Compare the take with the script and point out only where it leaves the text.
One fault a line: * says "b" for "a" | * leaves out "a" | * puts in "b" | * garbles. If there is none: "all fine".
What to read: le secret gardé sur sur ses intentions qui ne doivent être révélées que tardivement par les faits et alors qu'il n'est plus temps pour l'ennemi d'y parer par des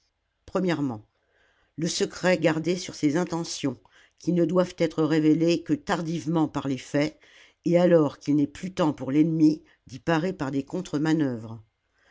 * leaves out "sur"